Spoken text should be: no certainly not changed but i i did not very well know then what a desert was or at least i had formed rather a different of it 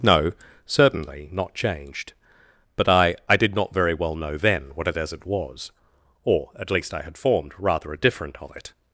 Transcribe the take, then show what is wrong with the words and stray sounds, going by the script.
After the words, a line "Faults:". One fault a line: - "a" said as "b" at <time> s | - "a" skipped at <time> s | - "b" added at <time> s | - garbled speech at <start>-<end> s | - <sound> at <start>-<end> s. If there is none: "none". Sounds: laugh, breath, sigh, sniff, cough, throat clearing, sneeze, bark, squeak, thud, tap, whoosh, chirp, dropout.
no certainly not changed but i i did not very well know then what a desert was or at least i had formed rather a different of it
Faults:
none